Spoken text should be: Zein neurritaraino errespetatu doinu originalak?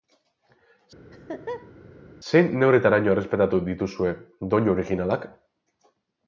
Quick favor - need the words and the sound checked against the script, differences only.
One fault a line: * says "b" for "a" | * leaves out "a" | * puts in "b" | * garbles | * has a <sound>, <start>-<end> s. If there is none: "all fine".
* has a laugh, 1.1-1.7 s
* puts in "dituzue"